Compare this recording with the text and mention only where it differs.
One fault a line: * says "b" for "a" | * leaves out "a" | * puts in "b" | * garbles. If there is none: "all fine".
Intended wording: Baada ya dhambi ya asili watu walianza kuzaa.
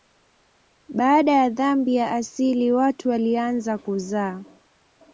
all fine